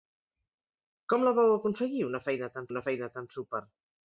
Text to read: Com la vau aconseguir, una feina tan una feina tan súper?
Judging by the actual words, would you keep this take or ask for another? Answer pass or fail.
pass